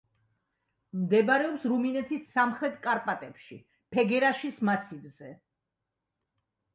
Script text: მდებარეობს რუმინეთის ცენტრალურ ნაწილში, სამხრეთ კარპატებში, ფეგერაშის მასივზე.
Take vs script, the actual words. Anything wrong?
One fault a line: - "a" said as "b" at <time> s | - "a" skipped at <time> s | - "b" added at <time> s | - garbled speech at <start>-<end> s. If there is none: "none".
- "ცენტრალურ ნაწილში" skipped at 2.2 s